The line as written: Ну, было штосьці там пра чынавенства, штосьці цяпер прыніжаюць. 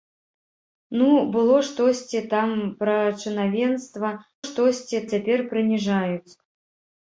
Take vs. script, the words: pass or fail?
pass